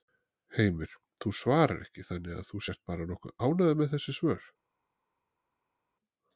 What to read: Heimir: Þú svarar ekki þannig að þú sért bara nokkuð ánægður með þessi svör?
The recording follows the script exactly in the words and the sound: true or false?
true